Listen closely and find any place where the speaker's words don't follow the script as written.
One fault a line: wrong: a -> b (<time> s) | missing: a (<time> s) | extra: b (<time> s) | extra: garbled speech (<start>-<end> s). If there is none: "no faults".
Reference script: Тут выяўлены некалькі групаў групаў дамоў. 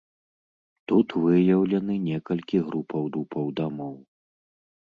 no faults